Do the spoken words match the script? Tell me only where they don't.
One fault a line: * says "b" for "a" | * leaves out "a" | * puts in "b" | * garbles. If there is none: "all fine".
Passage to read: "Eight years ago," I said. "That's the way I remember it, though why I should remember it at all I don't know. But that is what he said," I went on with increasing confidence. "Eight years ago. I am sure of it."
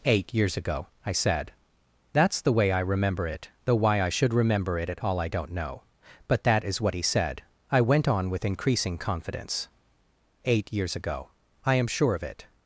all fine